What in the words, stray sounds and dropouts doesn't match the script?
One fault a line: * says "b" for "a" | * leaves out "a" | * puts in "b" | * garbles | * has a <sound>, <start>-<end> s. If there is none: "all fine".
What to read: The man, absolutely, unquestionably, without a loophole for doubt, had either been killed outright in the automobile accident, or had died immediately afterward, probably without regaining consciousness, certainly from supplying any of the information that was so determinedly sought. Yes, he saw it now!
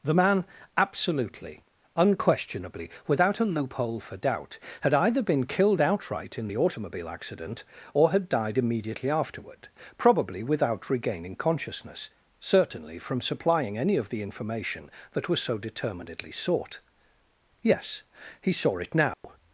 * has a dropout, 19.1-19.2 s